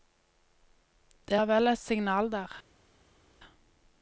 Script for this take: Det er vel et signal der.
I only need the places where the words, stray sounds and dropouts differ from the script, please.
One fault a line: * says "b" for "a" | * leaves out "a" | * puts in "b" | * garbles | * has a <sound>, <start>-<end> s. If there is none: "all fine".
all fine